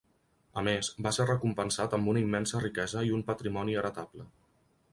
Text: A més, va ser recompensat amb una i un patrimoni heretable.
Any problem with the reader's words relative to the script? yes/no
yes